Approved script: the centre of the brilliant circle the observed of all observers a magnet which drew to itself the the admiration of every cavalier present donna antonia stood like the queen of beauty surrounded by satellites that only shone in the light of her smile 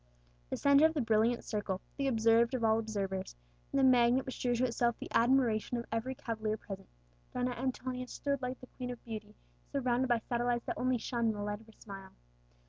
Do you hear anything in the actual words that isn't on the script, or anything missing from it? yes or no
yes